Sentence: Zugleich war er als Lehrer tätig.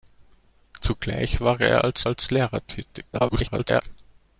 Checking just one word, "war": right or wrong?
right